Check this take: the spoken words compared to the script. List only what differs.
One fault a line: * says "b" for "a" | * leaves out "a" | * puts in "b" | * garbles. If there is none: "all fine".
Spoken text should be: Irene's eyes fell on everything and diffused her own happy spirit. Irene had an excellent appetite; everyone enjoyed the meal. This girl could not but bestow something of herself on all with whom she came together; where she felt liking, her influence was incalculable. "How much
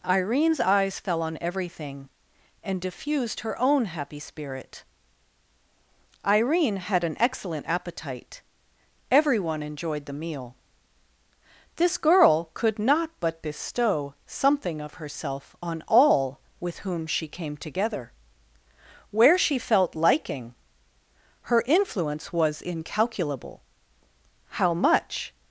all fine